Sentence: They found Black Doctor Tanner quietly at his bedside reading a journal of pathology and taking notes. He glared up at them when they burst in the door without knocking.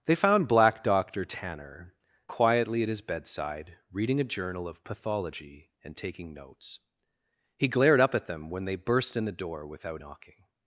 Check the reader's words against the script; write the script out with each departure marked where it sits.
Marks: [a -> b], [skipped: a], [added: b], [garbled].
They found Black Doctor Tanner quietly at his bedside reading a journal of pathology and taking notes. He glared up at them when they burst in the door without knocking.